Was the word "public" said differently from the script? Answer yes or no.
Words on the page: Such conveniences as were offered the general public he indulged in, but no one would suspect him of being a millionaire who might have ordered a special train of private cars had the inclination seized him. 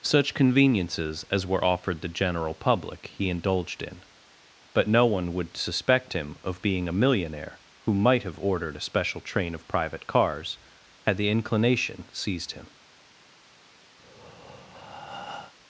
no